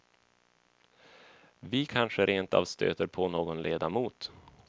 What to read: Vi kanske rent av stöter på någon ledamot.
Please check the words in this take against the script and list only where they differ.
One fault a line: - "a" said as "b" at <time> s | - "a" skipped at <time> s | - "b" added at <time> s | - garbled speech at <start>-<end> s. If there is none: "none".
none